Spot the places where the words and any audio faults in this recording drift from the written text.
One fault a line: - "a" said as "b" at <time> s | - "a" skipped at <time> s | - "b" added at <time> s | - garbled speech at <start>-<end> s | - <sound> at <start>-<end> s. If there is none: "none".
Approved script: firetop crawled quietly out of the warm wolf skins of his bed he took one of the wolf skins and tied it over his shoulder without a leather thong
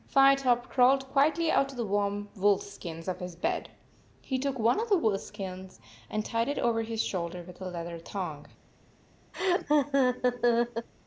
- "without" said as "with" at 7.5 s
- laugh at 9.3-10.9 s